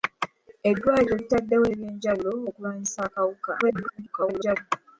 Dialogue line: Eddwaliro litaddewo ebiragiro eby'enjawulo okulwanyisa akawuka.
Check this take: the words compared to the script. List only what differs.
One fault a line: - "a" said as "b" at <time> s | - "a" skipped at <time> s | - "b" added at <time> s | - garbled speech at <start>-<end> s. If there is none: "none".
- "ebiragiro" skipped at 1.6 s
- garbled speech at 3.6-4.6 s